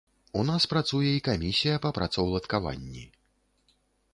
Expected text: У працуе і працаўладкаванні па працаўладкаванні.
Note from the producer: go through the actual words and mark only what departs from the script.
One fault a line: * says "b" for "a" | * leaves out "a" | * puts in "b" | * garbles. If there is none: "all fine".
* puts in "нас"
* says "камісія" for "працаўладкаванні"